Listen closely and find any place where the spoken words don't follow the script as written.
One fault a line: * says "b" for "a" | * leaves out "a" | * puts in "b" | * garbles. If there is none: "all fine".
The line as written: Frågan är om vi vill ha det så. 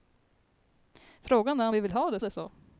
* puts in "det"